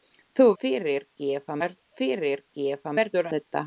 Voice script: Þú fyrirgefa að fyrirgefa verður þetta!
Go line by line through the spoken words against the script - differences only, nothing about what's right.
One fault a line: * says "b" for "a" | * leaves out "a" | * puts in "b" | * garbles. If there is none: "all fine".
all fine